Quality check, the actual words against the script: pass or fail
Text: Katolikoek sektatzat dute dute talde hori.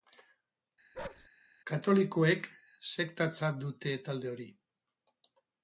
fail